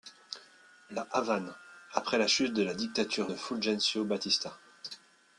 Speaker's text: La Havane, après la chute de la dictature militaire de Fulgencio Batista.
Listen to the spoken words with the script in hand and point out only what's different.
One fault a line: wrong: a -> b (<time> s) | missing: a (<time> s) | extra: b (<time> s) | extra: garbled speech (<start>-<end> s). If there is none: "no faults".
missing: militaire (3.3 s)